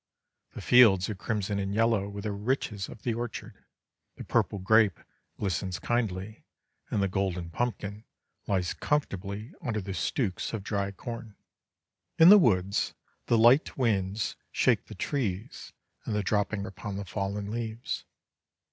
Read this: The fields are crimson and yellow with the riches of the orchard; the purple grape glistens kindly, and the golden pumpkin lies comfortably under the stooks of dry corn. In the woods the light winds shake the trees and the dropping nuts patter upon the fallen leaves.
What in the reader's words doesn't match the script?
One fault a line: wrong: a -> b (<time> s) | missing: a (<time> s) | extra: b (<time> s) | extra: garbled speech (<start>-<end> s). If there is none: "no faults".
missing: nuts patter (16.7 s)